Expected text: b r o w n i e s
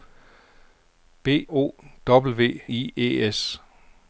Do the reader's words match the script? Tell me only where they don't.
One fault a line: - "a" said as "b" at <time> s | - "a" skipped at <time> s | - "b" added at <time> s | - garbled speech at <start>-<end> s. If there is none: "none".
- "r" skipped at 1.5 s
- "n" skipped at 2.6 s